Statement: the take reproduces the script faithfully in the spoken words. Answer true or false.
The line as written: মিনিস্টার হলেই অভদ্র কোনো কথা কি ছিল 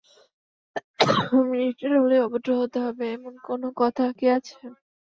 false